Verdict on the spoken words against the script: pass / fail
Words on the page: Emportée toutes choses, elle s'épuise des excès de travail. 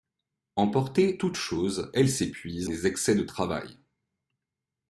pass